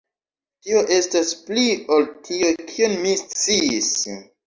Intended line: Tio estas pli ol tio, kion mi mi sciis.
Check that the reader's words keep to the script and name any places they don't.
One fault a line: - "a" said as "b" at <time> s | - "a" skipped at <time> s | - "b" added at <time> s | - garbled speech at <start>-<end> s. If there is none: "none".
- "mi" skipped at 3.2 s